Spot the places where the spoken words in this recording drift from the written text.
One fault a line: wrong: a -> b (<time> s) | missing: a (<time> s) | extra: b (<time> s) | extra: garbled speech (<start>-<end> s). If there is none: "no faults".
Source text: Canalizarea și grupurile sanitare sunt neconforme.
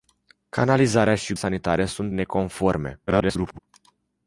missing: grupurile (1.4 s)
extra: garbled speech (3.1-3.6 s)